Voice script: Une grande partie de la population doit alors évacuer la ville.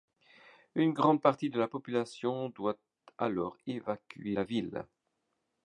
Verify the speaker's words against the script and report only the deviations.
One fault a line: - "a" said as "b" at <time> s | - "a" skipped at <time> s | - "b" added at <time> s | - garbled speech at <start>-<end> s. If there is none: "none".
none